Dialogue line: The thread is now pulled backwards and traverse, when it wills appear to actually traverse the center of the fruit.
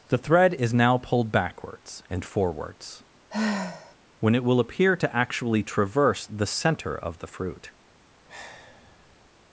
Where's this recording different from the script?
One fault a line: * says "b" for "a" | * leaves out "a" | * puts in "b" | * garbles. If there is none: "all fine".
* says "forwards" for "traverse"
* says "will" for "wills"